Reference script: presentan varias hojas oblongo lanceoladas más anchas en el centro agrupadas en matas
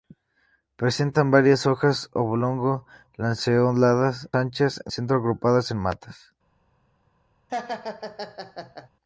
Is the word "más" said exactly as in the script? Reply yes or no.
no